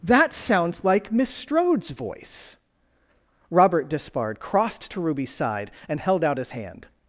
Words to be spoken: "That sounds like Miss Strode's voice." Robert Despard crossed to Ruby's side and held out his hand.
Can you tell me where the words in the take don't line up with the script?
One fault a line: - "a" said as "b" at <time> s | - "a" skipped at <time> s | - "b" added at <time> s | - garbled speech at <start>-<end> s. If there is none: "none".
none